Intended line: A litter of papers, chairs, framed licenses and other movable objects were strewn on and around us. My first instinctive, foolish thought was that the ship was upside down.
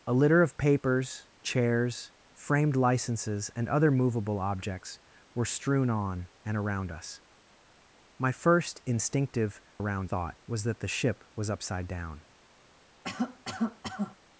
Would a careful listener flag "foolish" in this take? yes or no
yes